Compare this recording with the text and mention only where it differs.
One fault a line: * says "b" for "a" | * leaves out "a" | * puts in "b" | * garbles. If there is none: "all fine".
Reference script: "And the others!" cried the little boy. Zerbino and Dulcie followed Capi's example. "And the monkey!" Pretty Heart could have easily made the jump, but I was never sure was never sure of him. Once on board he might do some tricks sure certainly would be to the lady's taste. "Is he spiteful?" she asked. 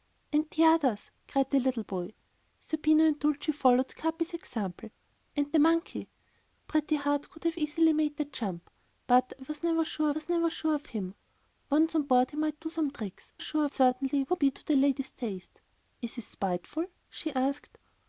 all fine